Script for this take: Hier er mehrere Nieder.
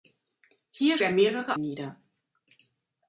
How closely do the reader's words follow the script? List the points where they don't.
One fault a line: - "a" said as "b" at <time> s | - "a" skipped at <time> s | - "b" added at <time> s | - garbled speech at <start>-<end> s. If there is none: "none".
none